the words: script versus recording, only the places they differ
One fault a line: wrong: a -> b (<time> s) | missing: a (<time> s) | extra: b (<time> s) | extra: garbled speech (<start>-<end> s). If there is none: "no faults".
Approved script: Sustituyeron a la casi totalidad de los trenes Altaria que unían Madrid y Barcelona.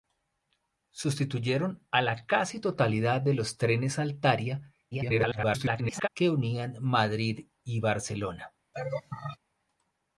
extra: garbled speech (4.9-6.1 s)